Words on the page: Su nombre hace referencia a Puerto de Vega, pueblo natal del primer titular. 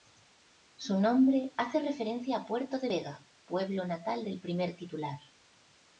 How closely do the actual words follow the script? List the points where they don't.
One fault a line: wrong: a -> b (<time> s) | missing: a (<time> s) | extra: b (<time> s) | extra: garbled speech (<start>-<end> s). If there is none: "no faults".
no faults